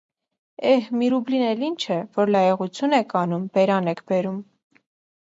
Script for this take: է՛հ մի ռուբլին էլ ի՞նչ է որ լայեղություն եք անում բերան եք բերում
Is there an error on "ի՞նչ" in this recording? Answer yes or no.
no